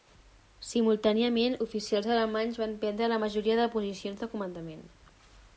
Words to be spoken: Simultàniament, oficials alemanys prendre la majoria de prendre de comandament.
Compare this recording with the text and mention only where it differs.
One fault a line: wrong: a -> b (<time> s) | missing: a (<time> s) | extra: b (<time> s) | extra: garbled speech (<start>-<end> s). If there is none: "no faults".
extra: van (2.6 s)
wrong: prendre -> posicions (3.8 s)